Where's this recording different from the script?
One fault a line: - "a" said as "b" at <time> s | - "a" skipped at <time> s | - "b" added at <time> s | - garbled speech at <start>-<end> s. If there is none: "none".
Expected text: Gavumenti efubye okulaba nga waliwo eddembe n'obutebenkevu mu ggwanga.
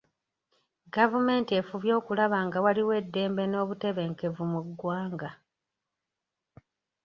none